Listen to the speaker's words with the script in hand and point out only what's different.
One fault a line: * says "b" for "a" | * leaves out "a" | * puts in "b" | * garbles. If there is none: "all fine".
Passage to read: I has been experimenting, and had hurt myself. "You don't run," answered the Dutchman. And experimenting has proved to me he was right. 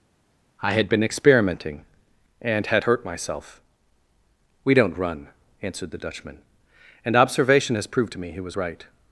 * says "had" for "has"
* says "We" for "You"
* says "observation" for "experimenting"